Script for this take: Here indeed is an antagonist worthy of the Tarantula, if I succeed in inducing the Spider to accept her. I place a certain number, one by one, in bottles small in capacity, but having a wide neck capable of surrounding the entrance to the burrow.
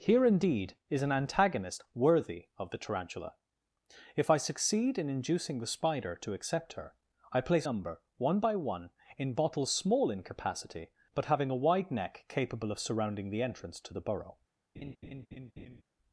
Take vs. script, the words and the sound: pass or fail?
fail